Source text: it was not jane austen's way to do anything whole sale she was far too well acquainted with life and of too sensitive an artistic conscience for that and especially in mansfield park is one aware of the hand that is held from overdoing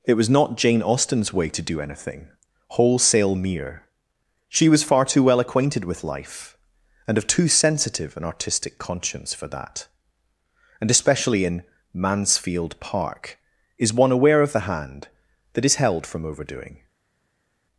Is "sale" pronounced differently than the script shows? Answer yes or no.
yes